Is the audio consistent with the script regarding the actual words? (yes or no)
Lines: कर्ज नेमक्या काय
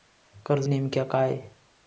yes